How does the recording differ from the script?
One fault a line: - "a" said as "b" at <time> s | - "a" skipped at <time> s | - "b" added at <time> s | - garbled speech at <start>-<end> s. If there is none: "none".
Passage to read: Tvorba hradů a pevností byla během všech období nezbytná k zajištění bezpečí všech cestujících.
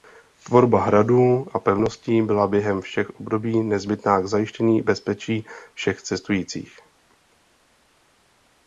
none